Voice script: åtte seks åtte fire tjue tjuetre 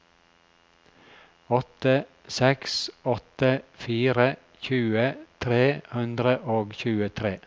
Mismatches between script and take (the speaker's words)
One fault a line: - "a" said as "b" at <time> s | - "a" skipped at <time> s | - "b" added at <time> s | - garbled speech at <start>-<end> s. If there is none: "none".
- "tre hundre og" added at 5.4 s